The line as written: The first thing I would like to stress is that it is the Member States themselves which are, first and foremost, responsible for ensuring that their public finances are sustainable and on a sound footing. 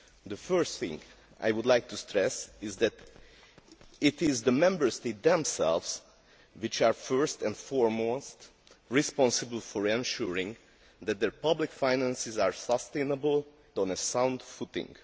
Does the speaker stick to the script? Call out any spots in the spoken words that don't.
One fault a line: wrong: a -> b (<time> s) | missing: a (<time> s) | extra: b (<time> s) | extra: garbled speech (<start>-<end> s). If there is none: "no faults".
missing: and (13.4 s)